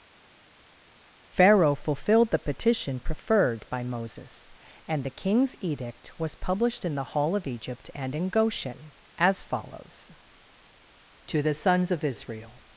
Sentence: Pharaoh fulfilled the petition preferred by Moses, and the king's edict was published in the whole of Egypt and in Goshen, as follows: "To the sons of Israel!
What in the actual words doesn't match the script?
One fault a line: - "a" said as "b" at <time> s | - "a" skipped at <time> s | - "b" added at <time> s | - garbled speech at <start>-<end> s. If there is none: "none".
- "whole" said as "hall" at 7.1 s